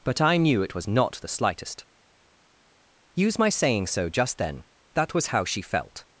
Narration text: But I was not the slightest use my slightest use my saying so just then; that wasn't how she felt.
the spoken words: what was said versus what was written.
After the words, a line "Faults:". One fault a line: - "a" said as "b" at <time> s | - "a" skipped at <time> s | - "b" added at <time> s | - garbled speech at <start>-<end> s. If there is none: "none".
But I knew it was not the slightest use my saying so just then; that was how she felt.
Faults:
- "knew it" added at 0.4 s
- "slightest use my" skipped at 3.5 s
- "wasn't" said as "was" at 5.1 s